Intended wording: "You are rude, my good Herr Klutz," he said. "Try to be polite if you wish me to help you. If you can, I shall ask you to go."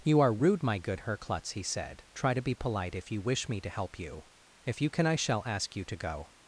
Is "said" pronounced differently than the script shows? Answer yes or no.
no